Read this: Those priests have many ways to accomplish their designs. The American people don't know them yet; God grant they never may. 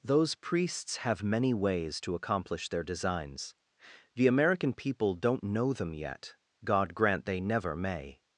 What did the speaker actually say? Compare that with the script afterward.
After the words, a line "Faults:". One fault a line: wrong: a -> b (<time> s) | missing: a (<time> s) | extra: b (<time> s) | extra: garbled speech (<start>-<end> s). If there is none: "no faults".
Those priests have many ways to accomplish their designs. The American people don't know them yet; God grant they never may.
Faults:
no faults